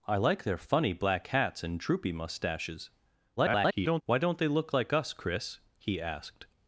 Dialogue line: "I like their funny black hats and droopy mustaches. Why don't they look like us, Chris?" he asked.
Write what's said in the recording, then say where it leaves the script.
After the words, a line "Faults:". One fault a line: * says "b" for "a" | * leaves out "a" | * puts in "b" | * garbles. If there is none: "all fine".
"I like their funny black hats and droopy mustaches. [garbled] Why don't they look like us, Chris?" he asked.
Faults:
* garbles